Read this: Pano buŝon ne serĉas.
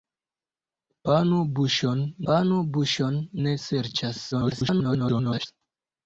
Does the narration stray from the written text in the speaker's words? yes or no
yes